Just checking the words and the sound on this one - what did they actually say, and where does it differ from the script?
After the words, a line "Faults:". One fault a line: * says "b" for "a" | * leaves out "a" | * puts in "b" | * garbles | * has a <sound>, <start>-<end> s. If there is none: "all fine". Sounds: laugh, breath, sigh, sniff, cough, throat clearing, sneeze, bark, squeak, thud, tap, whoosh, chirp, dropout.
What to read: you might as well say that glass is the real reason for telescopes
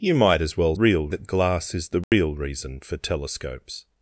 you might as well real that glass is the real reason for telescopes
Faults:
* says "real" for "say"
* has a dropout, 2.0-2.1 s